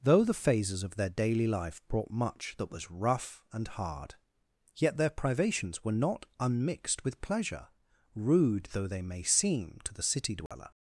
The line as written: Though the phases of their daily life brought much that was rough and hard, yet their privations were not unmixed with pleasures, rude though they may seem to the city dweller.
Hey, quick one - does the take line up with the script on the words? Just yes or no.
no